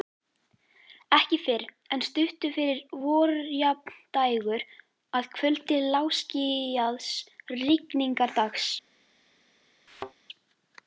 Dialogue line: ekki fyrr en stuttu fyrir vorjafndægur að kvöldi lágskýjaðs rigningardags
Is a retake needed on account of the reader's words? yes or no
no